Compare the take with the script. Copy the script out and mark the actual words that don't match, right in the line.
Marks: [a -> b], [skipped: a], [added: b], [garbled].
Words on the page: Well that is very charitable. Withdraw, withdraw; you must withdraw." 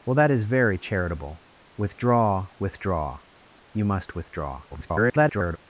Well that is very charitable. Withdraw, withdraw; you must withdraw." [garbled]